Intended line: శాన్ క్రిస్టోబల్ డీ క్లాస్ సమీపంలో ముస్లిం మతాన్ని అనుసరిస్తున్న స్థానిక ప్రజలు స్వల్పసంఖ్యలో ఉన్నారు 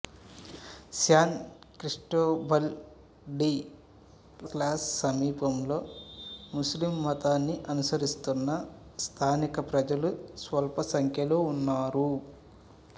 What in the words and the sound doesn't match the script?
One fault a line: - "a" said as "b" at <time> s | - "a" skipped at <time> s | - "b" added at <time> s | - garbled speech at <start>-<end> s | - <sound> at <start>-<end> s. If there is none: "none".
none